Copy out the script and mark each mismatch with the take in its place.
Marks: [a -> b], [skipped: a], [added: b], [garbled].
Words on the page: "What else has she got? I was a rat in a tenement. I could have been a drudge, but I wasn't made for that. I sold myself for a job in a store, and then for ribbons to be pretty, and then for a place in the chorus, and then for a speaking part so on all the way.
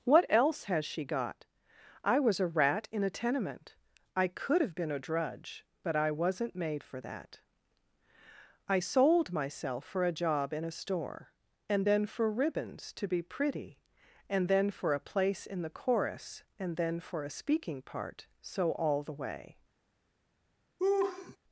"What else has she got? I was a rat in a tenement. I could have been a drudge, but I wasn't made for that. I sold myself for a job in a store, and then for ribbons to be pretty, and then for a place in the chorus, and then for a speaking part so [skipped: on] all the way.